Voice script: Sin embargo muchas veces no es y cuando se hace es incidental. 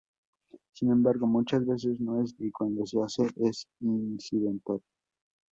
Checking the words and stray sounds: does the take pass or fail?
pass